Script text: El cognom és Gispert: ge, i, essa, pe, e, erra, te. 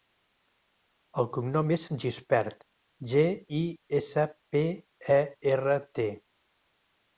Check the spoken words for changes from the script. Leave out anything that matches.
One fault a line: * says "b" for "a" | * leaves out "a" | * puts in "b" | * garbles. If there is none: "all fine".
all fine